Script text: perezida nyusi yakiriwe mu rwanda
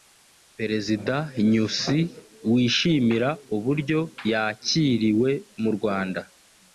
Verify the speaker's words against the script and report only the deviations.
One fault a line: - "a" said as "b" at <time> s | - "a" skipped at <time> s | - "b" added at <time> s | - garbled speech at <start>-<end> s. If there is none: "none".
- "wishimira uburyo" added at 2.5 s